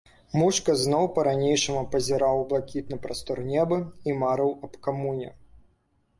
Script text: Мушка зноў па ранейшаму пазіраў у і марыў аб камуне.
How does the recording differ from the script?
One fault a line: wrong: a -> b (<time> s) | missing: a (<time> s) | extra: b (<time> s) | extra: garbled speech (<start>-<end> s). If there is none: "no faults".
extra: блакітны прастор неба (2.5 s)